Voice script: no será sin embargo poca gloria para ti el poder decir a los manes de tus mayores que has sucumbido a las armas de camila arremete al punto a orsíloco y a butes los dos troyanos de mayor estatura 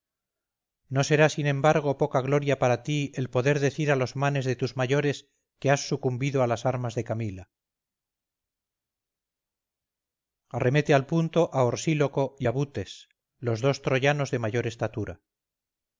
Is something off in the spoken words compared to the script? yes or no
no